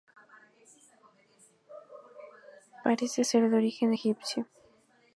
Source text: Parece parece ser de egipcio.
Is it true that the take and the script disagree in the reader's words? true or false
true